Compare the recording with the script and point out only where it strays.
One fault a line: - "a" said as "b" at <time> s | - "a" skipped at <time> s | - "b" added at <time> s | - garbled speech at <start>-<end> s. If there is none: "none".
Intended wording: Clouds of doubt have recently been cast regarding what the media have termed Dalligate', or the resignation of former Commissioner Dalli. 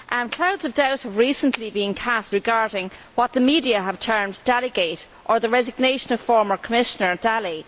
none